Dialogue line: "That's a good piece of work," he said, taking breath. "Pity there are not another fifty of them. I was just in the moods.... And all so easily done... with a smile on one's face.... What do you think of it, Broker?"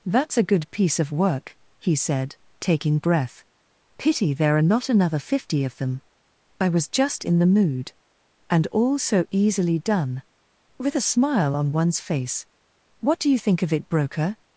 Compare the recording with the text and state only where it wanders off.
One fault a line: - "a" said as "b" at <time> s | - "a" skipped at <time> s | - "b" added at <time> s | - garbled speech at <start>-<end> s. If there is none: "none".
- "moods" said as "mood" at 7.5 s